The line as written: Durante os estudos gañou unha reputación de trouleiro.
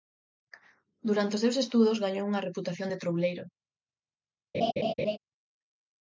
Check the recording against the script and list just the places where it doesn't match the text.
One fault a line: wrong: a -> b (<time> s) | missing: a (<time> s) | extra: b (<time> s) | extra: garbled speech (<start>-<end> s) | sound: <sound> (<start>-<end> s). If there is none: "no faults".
extra: seus (1.4 s)
sound: laugh (4.5-5.2 s)